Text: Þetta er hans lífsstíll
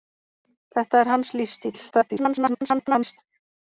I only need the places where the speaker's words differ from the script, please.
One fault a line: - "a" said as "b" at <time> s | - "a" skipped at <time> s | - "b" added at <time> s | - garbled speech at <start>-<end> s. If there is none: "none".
- garbled speech at 1.9-3.2 s